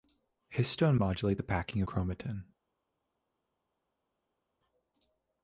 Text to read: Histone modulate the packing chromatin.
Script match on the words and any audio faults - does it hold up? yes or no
yes